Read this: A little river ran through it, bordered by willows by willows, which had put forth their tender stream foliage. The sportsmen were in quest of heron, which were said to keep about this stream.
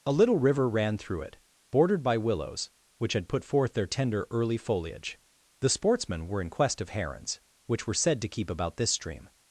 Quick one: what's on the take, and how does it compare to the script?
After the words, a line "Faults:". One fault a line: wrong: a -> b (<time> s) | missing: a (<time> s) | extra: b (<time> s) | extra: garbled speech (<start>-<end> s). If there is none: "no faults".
A little river ran through it, bordered by willows, which had put forth their tender early foliage. The sportsmen were in quest of herons, which were said to keep about this stream.
Faults:
missing: by willows (2.7 s)
wrong: stream -> early (4.3 s)
wrong: heron -> herons (6.9 s)